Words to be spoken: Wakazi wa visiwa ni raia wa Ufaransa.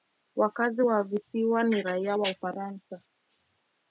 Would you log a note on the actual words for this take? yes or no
no